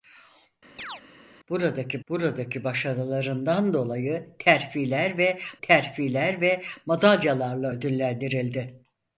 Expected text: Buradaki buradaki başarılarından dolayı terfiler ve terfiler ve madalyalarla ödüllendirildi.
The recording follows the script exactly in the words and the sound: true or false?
false